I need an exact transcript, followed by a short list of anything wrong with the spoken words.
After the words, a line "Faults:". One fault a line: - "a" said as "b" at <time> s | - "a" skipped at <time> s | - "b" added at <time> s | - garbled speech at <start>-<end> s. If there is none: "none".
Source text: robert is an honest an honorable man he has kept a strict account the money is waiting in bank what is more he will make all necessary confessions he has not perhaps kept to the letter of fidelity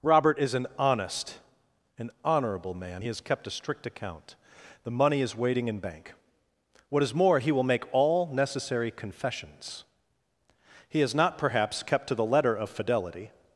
robert is an honest an honorable man he has kept a strict account the money is waiting in bank what is more he will make all necessary confessions he has not perhaps kept to the letter of fidelity
Faults:
none